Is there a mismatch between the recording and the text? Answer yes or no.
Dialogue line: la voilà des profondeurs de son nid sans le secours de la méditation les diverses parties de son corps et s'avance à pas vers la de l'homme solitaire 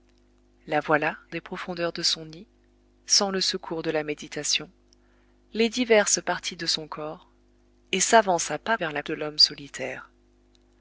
no